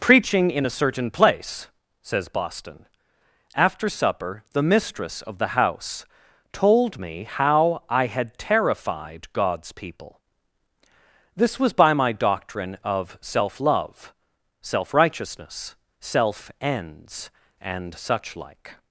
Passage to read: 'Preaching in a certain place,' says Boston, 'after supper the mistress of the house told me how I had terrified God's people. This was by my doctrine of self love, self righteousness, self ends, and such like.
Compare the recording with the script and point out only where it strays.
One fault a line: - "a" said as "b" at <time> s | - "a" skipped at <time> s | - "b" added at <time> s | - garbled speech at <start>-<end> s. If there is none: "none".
none